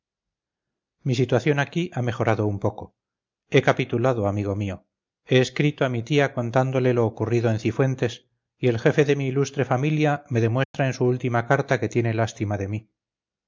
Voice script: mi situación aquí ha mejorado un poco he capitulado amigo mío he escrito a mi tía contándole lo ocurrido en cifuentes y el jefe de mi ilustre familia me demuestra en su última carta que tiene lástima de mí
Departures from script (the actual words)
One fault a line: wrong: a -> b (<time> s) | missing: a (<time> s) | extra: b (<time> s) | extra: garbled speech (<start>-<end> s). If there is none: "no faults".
no faults